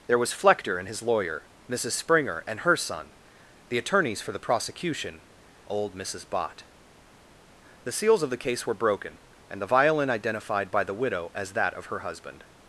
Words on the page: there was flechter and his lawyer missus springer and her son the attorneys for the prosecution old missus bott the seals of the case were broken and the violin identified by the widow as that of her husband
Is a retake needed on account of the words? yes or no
no